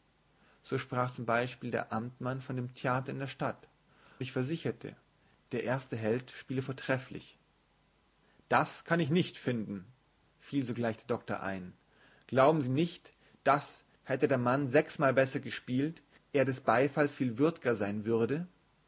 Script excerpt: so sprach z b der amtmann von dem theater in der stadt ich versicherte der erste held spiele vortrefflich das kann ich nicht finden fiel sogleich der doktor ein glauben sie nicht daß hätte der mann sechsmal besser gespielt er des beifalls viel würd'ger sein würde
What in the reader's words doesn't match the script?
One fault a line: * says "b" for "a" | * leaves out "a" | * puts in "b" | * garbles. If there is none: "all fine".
all fine